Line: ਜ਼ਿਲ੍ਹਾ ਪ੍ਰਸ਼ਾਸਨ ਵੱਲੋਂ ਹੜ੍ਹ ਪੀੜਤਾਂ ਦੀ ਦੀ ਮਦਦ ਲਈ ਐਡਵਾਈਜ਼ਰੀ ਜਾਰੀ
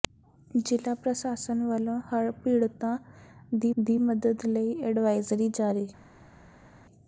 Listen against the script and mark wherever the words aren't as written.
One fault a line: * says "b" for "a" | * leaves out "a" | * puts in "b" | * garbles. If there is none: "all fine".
all fine